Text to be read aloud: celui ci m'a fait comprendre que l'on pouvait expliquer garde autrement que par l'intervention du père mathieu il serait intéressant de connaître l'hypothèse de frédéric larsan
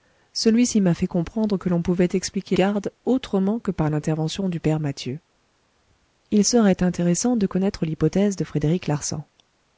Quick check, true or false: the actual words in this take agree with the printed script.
true